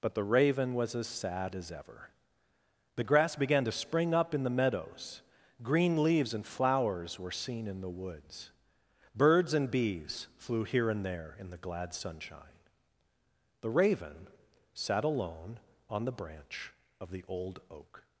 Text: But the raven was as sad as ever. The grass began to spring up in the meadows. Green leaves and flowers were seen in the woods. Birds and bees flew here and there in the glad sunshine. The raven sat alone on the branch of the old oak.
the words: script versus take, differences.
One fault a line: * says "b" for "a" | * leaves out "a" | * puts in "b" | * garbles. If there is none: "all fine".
all fine